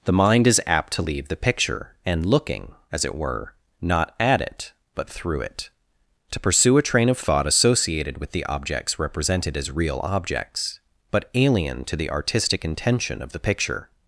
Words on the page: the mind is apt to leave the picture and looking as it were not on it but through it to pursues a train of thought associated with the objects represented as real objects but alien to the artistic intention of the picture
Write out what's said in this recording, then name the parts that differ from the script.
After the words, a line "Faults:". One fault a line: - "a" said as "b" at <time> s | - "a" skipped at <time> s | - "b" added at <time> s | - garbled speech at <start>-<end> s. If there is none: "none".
the mind is apt to leave the picture and looking as it were not at it but through it to pursue a train of thought associated with the objects represented as real objects but alien to the artistic intention of the picture
Faults:
- "on" said as "at" at 4.2 s
- "pursues" said as "pursue" at 6.4 s